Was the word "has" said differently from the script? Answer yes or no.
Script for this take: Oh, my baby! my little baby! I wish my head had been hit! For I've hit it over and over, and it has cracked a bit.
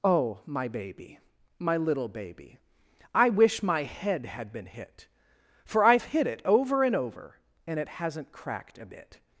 yes